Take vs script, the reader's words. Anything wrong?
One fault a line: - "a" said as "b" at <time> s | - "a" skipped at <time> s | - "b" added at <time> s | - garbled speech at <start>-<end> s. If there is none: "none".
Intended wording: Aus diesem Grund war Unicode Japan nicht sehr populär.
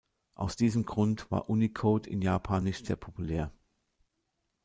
- "in" added at 2.1 s